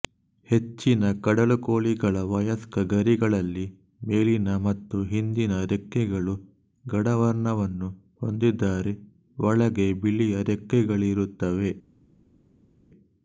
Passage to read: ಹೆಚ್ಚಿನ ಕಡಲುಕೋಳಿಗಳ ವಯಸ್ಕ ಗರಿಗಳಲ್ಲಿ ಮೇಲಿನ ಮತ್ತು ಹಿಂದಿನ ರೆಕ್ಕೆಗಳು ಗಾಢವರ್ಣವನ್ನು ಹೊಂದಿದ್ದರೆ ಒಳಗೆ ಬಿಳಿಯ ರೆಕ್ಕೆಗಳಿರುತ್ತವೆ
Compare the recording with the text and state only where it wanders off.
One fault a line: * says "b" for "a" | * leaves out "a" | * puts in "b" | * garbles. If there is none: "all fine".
all fine